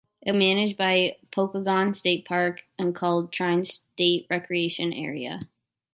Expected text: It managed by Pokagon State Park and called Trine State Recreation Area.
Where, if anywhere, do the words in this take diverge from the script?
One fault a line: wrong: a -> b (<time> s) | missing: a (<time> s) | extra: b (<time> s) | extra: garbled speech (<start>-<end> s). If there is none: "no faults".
no faults